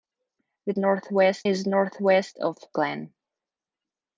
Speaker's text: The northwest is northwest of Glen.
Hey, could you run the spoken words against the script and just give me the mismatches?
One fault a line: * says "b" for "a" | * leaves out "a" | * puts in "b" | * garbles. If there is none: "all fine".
all fine